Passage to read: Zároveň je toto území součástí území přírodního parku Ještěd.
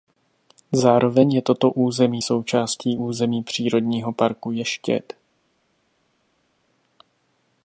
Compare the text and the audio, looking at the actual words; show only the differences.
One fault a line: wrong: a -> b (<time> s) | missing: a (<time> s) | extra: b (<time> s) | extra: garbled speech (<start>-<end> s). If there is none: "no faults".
no faults